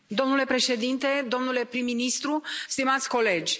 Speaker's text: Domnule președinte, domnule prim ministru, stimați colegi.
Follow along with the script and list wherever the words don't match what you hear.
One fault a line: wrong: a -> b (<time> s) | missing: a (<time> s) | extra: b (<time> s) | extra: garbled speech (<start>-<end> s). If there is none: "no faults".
no faults